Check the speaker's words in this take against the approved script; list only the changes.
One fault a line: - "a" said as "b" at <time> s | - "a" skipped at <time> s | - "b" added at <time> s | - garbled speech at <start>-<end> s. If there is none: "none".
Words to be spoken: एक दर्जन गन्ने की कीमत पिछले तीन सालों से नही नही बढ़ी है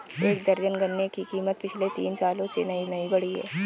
none